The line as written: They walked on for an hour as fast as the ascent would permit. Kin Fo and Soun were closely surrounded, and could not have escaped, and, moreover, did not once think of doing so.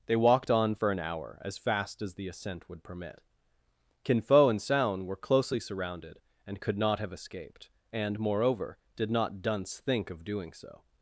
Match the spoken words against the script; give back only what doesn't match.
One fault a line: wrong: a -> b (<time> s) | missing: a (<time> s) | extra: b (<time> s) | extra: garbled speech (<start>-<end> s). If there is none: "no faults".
wrong: once -> dunce (9.4 s)